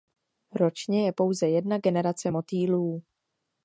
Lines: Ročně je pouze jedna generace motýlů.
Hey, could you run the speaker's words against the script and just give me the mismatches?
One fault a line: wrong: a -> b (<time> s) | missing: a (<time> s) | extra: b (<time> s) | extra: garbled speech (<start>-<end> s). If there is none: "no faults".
no faults